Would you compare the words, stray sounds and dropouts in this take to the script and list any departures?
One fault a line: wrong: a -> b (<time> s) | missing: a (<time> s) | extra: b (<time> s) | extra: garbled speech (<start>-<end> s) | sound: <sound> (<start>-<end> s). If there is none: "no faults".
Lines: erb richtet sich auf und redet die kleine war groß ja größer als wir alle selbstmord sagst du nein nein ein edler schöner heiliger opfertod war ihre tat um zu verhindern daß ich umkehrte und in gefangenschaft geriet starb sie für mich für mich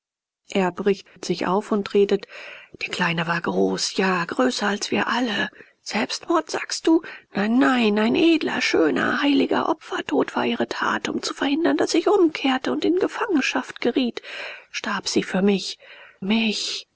sound: dropout (1.1-1.2 s)
missing: für (15.8 s)